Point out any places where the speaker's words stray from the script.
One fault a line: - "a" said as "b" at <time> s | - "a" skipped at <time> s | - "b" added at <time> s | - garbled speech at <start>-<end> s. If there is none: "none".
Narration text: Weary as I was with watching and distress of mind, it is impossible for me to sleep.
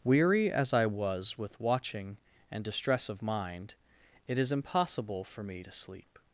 none